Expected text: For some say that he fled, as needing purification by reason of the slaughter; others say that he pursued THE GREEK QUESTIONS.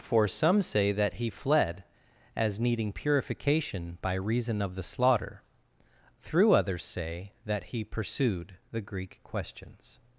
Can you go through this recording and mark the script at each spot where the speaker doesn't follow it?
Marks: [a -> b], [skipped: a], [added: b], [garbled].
For some say that he fled, as needing purification by reason of the slaughter; [added: through] others say that he pursued THE GREEK QUESTIONS.